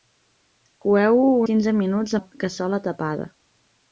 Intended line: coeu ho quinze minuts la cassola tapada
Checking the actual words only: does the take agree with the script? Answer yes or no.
yes